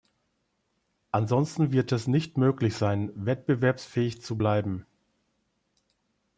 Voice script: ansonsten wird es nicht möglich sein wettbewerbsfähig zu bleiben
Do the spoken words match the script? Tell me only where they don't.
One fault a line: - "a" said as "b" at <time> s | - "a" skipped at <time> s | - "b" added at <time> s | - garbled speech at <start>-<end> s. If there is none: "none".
none